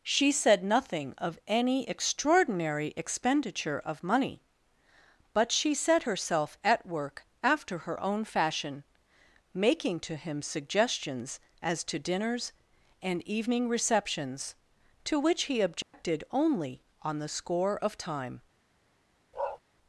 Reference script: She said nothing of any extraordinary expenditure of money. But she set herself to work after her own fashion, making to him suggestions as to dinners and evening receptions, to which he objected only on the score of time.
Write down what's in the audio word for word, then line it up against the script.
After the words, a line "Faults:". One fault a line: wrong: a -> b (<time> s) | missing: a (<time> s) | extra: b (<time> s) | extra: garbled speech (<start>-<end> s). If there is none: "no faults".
She said nothing of any extraordinary expenditure of money. But she set herself at work after her own fashion, making to him suggestions as to dinners and evening receptions, to which he objected only on the score of time.
Faults:
wrong: to -> at (6.6 s)